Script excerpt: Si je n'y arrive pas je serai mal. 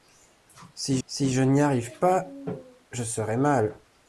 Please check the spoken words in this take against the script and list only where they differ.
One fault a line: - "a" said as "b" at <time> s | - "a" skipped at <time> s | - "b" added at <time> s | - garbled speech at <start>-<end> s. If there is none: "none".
- "si" added at 1.1 s